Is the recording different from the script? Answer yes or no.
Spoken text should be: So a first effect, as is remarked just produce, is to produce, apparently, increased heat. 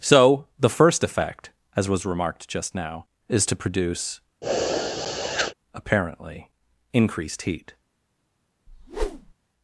yes